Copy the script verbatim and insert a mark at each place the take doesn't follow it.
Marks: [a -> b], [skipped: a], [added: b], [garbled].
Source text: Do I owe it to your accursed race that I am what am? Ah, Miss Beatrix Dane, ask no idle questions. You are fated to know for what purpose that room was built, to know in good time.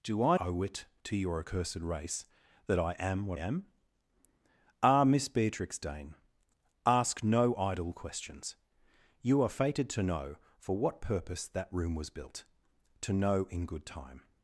Do I owe it to your accursed race that I am what am? Ah, Miss Beatrix Dane, ask no idle questions. You are fated to know for what purpose that room was built, to know in good time.